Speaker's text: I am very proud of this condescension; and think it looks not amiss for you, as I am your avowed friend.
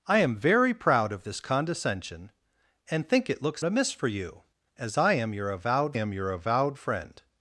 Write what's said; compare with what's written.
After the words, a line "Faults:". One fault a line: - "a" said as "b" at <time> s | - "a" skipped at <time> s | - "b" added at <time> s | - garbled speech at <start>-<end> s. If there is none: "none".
I am very proud of this condescension; and think it looks amiss for you, as I am your avowed am your avowed friend.
Faults:
- "not" skipped at 3.6 s
- "am your avowed" added at 5.9 s